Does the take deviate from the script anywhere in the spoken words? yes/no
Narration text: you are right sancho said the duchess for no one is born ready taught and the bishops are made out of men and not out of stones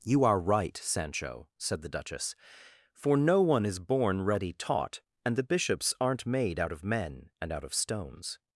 yes